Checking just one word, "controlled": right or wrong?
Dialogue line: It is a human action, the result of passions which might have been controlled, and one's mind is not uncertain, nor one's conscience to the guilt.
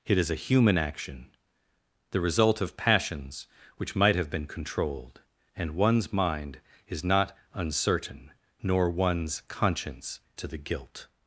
right